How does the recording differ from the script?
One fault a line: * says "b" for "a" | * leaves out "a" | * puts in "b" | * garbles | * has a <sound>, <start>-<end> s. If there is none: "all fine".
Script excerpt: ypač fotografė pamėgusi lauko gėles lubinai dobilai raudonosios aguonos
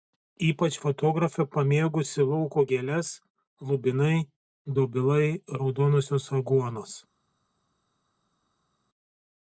all fine